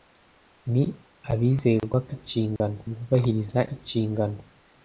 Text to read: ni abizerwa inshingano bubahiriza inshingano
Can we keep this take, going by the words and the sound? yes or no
no